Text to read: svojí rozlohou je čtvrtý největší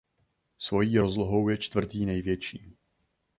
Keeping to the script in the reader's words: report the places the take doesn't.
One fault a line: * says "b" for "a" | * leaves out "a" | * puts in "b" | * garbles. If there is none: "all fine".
all fine